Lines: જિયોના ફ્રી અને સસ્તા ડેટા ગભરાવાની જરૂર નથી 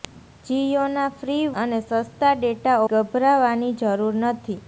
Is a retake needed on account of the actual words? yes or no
no